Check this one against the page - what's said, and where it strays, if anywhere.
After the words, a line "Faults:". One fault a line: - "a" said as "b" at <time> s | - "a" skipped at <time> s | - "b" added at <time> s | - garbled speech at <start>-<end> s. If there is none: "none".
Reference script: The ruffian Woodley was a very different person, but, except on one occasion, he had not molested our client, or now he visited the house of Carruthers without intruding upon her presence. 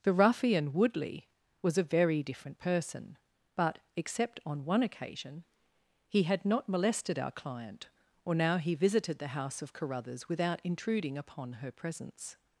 The ruffian Woodley was a very different person, but, except on one occasion, he had not molested our client, or now he visited the house of Carruthers without intruding upon her presence.
Faults:
none